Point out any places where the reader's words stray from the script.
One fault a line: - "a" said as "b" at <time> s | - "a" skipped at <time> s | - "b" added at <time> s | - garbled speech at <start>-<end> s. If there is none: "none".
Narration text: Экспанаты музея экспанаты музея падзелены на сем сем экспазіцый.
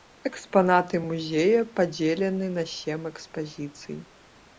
- "экспанаты музея" skipped at 1.6 s
- "сем" skipped at 3.0 s